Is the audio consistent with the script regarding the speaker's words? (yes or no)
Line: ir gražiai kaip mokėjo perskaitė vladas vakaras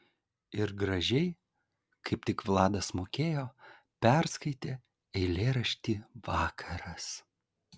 no